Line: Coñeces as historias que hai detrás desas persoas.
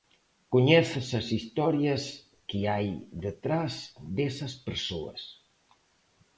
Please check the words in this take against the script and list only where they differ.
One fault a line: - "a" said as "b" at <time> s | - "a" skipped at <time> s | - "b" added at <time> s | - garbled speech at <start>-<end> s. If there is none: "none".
none